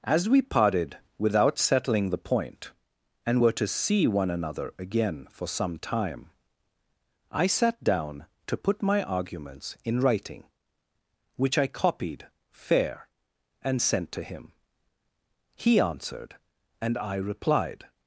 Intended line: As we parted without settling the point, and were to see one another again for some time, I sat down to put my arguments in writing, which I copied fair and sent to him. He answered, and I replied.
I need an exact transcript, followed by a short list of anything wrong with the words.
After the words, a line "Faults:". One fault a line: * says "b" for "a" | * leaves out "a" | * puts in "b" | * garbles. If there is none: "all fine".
As we parted without settling the point, and were to see one another again for some time, I sat down to put my arguments in writing, which I copied fair and sent to him. He answered, and I replied.
Faults:
all fine